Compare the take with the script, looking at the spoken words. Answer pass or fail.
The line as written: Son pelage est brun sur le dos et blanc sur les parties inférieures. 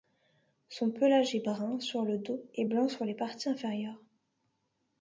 pass